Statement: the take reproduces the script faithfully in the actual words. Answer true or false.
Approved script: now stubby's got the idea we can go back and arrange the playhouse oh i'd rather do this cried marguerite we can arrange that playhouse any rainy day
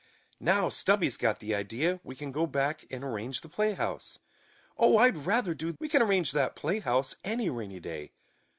false